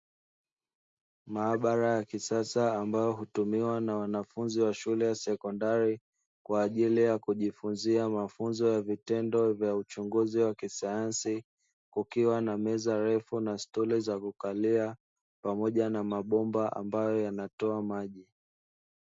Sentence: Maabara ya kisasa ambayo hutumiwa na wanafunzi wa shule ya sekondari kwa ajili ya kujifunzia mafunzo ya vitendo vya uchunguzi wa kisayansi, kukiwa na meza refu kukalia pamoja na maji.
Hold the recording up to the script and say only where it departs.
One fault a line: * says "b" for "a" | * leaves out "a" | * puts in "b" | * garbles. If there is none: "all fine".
* puts in "na stuli za"
* puts in "mabomba ambayo yanatoa"